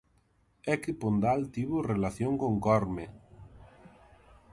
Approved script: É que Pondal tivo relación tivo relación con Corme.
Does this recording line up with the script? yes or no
no